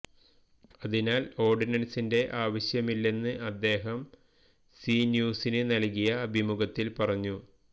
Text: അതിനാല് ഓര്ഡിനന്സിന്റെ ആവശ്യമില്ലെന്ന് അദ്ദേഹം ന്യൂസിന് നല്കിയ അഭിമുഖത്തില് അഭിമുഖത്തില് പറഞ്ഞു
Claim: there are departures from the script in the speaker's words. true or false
true